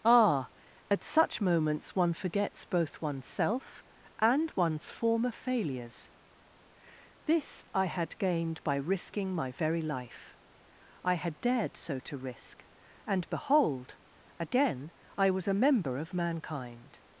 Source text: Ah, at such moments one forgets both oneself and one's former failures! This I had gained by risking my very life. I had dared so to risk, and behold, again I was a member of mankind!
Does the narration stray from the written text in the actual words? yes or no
no